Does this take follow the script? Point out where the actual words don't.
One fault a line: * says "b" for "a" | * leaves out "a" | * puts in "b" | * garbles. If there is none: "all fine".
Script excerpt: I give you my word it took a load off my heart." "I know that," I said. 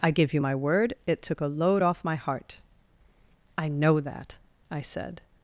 all fine